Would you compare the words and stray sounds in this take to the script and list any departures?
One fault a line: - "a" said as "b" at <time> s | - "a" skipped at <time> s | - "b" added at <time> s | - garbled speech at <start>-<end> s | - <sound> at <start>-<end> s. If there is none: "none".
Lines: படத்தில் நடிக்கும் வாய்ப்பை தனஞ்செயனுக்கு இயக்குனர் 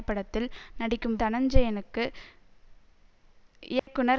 - "வாய்ப்பை" skipped at 1.2 s
- dropout at 3.8-3.9 s